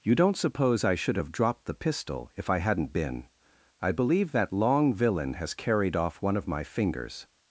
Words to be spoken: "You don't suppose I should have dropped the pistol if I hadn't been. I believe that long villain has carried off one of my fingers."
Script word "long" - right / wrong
right